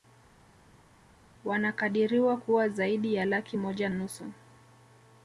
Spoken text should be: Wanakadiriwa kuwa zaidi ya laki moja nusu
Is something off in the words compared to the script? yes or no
no